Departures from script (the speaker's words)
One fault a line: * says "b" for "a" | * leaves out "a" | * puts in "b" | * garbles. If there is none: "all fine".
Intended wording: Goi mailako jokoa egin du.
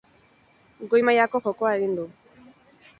all fine